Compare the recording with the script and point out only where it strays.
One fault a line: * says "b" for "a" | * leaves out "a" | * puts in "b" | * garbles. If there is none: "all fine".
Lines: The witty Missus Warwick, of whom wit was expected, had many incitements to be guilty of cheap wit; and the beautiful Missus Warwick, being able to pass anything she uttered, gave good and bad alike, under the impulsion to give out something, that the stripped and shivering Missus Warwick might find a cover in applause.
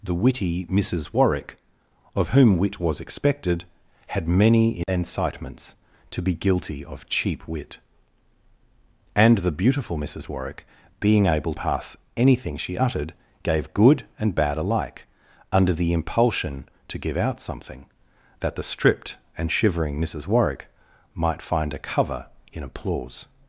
* leaves out "to"